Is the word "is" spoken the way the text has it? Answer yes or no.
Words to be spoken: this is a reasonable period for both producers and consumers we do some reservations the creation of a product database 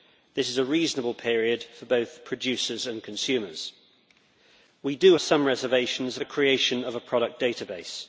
yes